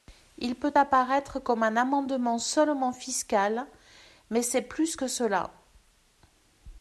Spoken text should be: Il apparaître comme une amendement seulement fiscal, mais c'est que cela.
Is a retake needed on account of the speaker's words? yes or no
yes